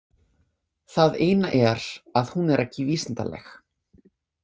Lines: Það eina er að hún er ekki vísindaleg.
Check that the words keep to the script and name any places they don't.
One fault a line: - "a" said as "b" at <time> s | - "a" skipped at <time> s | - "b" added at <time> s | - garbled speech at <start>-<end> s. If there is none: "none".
none